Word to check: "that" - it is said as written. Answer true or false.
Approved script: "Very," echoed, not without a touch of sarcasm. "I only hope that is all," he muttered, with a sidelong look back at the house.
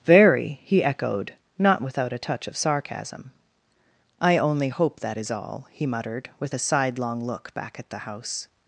true